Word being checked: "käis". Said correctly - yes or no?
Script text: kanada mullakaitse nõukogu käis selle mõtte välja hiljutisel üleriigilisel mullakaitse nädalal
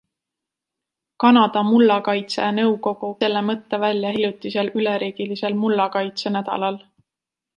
no